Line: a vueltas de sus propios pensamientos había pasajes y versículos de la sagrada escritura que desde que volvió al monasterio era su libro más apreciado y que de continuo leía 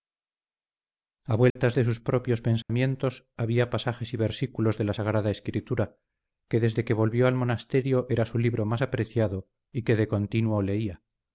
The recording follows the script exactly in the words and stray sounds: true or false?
false